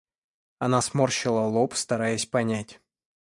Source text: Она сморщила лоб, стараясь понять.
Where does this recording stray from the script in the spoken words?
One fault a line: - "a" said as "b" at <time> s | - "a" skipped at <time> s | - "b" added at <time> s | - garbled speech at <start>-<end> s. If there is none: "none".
none